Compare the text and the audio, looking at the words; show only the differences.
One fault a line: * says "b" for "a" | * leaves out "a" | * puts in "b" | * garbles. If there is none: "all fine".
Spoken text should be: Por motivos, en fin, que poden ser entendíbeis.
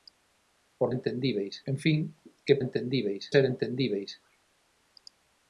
* says "entendíbeis" for "motivos"
* says "entendíbeis" for "poden"